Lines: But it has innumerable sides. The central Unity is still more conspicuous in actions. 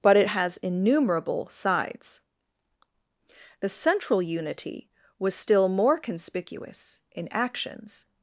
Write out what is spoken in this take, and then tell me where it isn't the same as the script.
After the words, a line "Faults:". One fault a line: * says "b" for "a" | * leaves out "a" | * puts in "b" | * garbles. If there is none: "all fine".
But it has innumerable sides. The central Unity was still more conspicuous in actions.
Faults:
* says "was" for "is"